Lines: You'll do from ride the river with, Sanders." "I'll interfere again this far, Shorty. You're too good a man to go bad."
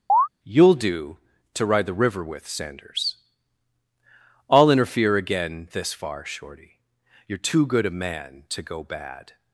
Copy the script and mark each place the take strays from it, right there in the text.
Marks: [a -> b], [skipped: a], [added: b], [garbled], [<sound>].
[chirp] You'll do [from -> to] ride the river with, Sanders." "I'll interfere again this far, Shorty. You're too good a man to go bad."